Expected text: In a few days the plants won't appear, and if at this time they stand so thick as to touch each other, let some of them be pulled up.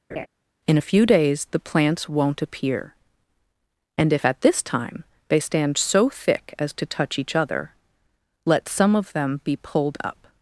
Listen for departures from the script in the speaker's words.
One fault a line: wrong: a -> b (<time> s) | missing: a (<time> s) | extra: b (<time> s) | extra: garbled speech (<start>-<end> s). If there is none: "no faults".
no faults